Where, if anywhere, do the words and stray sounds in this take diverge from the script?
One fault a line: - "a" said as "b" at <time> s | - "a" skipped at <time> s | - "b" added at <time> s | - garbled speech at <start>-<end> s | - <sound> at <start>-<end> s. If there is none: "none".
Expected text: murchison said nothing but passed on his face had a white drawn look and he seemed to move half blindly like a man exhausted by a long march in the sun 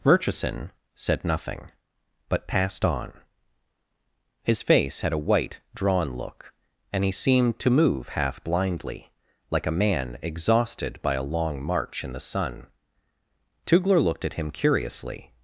- "tugler looked at him curiously" added at 13.7 s